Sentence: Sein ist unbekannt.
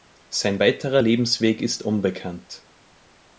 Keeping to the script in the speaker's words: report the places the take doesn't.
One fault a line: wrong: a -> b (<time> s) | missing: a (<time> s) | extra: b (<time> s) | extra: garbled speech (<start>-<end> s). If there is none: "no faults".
extra: weiterer Lebensweg (0.6 s)